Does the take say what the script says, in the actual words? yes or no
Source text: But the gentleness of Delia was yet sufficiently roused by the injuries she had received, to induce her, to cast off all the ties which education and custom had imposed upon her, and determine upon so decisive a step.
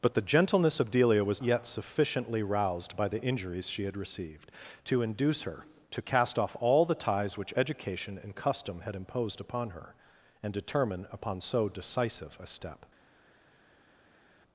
yes